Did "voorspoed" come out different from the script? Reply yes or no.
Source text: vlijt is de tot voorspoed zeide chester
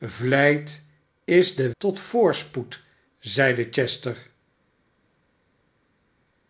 no